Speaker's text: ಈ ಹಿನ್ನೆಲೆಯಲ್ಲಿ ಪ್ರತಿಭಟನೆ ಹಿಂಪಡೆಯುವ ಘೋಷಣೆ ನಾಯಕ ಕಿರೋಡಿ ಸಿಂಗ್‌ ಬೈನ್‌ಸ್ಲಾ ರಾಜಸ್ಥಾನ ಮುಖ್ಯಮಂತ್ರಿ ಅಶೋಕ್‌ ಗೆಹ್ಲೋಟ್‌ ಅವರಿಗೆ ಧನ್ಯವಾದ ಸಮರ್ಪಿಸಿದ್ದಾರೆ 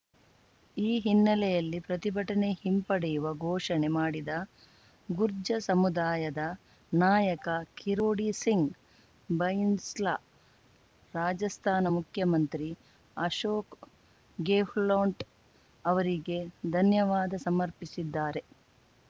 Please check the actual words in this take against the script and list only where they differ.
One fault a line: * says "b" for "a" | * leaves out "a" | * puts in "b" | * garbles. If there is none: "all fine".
* puts in "ಮಾಡಿದ ಗುರ್ಜ್ಜ ಸಮುದಾಯದ"